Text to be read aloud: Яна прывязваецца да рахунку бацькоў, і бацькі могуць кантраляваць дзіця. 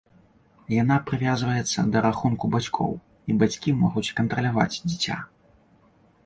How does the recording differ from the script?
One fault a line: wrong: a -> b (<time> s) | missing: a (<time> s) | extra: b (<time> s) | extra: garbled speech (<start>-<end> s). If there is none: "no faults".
no faults